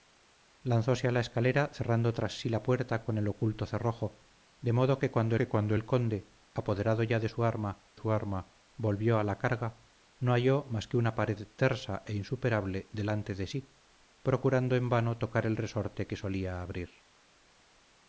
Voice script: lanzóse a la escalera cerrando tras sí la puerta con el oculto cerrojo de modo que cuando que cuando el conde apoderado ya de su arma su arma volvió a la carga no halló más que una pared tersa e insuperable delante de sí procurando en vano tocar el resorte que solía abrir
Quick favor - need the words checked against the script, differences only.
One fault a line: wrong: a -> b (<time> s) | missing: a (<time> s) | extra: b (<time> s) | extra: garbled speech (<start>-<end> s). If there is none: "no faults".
no faults